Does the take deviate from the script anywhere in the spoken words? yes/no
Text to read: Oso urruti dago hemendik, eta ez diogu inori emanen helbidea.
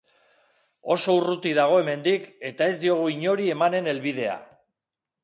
no